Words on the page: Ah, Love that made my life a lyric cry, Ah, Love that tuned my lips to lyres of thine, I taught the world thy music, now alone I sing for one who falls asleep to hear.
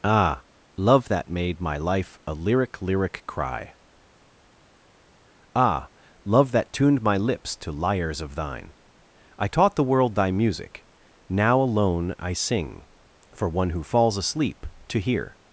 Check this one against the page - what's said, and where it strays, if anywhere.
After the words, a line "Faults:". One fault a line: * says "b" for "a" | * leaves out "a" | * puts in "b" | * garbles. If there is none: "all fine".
Ah, Love that made my life a lyric lyric cry, Ah, Love that tuned my lips to lyres of thine, I taught the world thy music, now alone I sing for one who falls asleep to hear.
Faults:
* puts in "lyric"